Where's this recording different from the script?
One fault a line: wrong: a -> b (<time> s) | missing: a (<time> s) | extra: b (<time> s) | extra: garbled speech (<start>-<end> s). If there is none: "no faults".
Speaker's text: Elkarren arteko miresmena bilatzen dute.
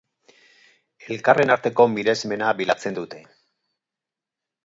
no faults